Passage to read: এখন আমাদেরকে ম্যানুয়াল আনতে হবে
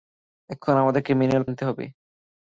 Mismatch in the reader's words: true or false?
false